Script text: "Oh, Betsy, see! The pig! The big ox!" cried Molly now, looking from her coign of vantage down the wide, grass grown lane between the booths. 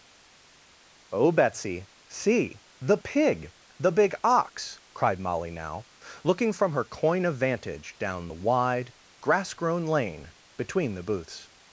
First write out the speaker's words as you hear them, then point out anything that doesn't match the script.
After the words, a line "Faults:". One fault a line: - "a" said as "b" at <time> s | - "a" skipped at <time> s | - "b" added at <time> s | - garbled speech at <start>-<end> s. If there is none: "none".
"Oh, Betsy, see! The pig! The big ox!" cried Molly now, looking from her coign of vantage down the wide, grass grown lane between the booths.
Faults:
none